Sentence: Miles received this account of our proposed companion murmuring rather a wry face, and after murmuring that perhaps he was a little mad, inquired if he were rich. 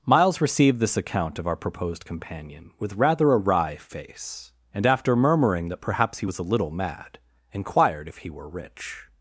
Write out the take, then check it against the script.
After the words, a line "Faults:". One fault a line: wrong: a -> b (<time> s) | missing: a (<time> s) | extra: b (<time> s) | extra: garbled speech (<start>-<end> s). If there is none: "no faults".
Miles received this account of our proposed companion with rather a wry face, and after murmuring that perhaps he was a little mad, inquired if he were rich.
Faults:
wrong: murmuring -> with (2.8 s)